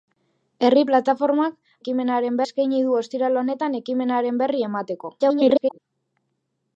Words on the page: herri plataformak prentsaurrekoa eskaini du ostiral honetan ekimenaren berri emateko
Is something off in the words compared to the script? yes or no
yes